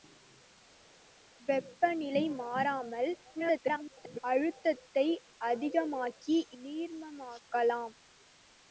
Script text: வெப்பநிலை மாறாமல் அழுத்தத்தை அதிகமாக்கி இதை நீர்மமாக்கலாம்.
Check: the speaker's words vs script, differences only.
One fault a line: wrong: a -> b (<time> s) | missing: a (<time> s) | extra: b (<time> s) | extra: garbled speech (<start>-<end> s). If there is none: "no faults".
extra: garbled speech (3.4-4.2 s)
missing: இதை (6.4 s)